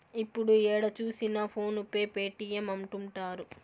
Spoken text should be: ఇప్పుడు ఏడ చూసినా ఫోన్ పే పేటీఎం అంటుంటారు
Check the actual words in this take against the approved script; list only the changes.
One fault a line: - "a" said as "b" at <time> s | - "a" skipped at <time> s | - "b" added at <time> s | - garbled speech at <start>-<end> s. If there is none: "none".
none